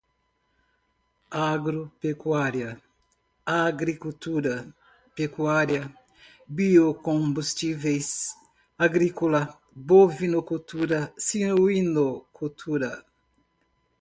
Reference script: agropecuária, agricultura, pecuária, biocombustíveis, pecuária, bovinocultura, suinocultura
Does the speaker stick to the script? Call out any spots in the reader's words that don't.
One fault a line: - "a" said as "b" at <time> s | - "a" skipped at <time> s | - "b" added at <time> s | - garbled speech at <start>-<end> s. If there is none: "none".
- "pecuária" said as "agrícola" at 8.8 s